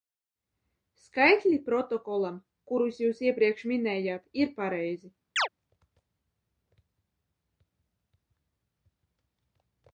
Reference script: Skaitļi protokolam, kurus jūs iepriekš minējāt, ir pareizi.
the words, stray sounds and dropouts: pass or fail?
fail